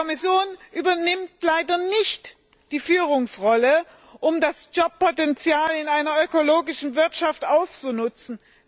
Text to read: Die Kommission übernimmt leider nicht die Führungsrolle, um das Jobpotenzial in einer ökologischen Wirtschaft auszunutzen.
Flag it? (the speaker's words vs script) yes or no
no